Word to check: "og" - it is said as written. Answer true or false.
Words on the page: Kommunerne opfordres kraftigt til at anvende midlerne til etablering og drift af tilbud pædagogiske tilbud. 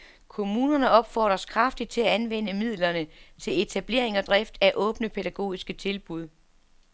true